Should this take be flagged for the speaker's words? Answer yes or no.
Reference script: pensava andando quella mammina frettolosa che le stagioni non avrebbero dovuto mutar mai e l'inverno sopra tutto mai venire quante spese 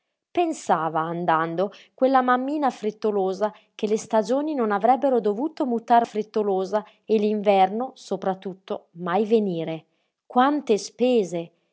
yes